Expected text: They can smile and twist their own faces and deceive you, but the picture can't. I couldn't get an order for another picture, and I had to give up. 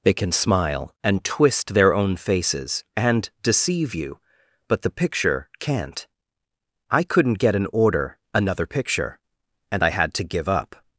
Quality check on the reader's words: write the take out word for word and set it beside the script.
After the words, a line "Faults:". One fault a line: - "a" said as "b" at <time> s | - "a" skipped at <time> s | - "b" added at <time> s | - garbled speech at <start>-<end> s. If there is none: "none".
They can smile and twist their own faces and deceive you, but the picture can't. I couldn't get an order another picture, and I had to give up.
Faults:
- "for" skipped at 8.2 s